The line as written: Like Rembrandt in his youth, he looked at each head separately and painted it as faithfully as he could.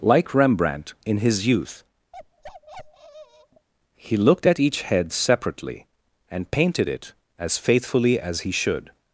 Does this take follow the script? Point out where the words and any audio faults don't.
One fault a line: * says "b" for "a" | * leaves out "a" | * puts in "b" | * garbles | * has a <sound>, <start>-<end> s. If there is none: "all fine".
* has a bark, 2.1-3.7 s
* says "should" for "could"